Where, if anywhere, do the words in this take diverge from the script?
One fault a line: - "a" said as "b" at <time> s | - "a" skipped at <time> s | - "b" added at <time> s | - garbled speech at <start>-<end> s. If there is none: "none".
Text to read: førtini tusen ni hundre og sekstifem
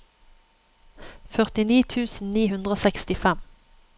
none